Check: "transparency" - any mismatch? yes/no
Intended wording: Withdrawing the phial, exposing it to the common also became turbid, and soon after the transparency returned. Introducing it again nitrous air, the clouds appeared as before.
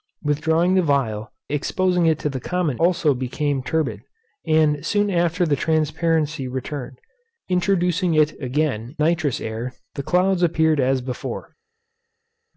no